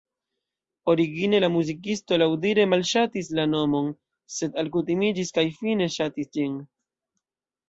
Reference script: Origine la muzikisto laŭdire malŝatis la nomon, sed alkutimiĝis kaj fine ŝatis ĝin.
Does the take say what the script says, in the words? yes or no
yes